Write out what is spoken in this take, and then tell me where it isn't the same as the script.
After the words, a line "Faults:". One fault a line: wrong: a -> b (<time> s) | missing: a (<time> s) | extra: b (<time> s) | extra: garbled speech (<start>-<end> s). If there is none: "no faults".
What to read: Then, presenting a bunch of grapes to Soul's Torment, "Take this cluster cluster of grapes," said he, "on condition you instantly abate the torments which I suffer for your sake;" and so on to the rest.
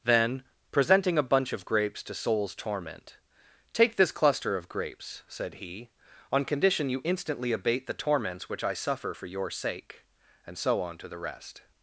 Then, presenting a bunch of grapes to Soul's Torment, "Take this cluster of grapes," said he, "on condition you instantly abate the torments which I suffer for your sake;" and so on to the rest.
Faults:
missing: cluster (4.6 s)